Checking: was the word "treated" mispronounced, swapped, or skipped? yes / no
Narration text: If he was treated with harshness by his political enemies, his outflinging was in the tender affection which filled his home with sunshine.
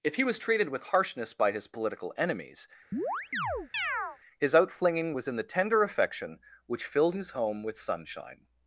no